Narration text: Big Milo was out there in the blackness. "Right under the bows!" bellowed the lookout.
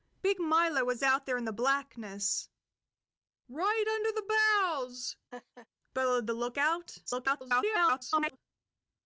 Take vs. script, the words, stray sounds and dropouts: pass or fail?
fail